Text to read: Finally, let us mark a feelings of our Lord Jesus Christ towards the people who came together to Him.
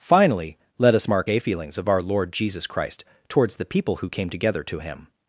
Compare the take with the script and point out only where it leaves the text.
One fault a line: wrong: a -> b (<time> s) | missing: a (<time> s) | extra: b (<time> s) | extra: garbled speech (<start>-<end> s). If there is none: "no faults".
no faults